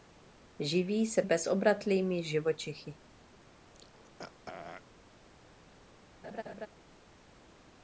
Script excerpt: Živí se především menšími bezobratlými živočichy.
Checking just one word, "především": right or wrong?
wrong